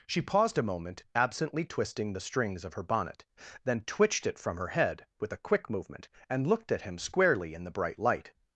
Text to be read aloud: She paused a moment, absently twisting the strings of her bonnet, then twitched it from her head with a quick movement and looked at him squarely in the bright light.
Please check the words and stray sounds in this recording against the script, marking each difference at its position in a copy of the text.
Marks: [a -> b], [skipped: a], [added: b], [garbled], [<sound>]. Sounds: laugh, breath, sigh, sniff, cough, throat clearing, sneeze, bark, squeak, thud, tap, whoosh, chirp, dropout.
She paused a moment, absently twisting the strings of her bonnet, then twitched it from her head with a quick movement and looked at him squarely in the bright light.